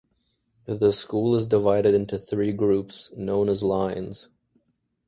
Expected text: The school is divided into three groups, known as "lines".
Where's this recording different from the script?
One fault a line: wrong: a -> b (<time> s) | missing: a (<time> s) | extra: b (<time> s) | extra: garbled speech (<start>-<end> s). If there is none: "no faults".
no faults